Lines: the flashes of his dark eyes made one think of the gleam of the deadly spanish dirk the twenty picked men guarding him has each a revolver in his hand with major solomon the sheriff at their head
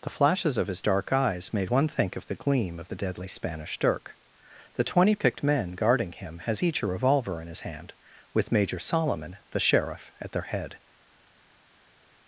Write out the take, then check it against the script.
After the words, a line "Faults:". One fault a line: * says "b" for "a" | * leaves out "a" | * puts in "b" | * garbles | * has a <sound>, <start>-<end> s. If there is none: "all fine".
the flashes of his dark eyes made one think of the gleam of the deadly spanish dirk the twenty picked men guarding him has each a revolver in his hand with major solomon the sheriff at their head
Faults:
all fine